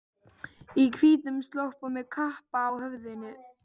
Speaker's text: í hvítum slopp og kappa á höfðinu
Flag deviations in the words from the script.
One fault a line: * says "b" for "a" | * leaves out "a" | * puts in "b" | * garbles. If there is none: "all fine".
* puts in "með"